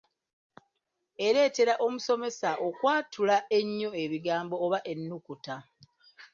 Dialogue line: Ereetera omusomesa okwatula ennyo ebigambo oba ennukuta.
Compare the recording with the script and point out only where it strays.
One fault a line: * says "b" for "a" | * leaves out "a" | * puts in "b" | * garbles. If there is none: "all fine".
all fine